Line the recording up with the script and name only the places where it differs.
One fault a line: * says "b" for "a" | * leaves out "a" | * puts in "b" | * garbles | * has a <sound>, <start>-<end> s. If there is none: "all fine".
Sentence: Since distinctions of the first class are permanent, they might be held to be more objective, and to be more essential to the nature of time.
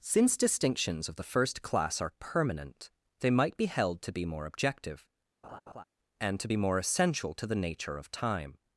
* has a laugh, 5.4-5.8 s